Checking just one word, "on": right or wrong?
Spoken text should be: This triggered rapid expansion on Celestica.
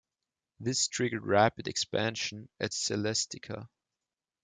wrong